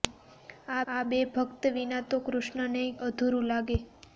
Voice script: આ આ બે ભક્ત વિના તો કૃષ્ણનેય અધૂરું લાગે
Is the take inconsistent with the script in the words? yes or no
no